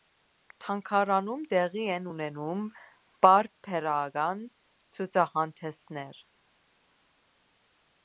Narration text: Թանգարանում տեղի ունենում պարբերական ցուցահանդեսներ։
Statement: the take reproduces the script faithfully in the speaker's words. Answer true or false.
false